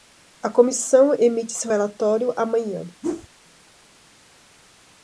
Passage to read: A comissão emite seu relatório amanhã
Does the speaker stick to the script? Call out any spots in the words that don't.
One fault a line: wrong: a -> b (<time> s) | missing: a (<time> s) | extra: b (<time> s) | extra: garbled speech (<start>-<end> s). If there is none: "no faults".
no faults